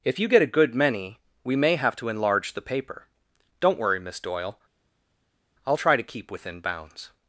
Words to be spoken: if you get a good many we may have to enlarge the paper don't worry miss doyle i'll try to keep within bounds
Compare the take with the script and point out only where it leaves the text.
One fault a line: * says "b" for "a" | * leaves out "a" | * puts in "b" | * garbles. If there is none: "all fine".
all fine